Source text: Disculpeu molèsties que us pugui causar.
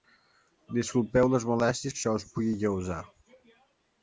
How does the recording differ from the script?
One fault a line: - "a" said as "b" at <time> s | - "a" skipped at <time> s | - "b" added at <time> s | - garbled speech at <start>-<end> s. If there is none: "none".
- "les" added at 1.3 s
- "això" added at 2.0 s